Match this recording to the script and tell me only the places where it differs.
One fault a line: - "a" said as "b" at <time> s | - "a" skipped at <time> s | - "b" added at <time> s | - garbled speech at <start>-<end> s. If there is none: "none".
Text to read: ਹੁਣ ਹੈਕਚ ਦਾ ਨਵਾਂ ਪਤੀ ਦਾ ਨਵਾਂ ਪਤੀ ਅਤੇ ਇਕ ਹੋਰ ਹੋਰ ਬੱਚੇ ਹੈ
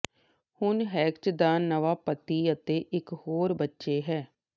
- "ਦਾ ਨਵਾਂ ਪਤੀ" skipped at 2.5 s
- "ਹੋਰ" skipped at 3.5 s